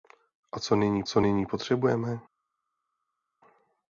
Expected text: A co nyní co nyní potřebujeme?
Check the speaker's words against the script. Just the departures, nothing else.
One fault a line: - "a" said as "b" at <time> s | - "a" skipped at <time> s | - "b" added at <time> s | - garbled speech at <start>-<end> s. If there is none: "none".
none